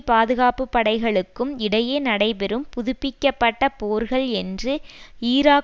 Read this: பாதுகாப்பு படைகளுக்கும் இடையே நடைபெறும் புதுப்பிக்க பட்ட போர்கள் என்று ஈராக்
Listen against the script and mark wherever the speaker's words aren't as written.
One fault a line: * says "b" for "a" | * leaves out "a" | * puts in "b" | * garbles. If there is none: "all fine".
all fine